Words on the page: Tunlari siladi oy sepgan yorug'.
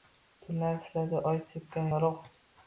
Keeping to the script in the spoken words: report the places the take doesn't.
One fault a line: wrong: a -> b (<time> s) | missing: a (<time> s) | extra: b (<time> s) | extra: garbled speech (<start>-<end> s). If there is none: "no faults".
no faults